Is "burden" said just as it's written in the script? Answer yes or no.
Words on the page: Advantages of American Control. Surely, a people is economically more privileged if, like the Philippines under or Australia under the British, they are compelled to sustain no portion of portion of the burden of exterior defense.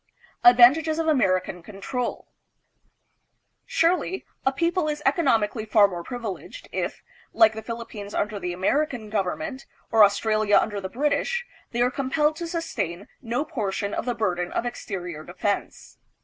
yes